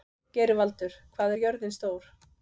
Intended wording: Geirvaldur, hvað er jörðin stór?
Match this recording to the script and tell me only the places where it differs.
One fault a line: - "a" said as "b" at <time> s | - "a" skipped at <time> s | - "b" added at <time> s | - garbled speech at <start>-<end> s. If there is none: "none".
none